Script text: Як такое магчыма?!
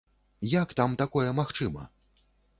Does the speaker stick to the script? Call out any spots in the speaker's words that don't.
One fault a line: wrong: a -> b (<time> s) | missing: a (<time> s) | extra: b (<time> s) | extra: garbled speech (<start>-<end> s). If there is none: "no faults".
extra: там (0.8 s)